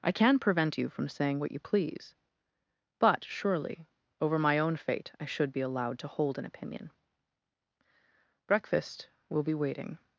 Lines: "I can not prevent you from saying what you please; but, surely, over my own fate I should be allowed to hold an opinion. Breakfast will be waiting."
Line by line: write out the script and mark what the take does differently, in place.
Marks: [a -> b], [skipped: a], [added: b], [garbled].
"I can [skipped: not] prevent you from saying what you please; but, surely, over my own fate I should be allowed to hold an opinion. Breakfast will be waiting."